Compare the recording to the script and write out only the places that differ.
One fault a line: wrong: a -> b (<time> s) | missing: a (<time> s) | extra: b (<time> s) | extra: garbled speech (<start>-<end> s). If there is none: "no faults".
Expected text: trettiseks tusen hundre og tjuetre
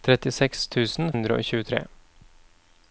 no faults